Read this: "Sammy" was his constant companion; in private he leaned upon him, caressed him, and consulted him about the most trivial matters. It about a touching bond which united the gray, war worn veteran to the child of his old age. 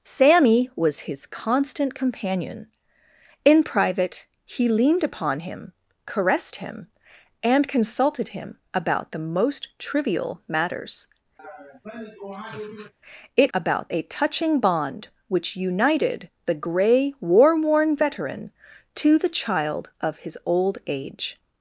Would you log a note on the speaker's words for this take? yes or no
no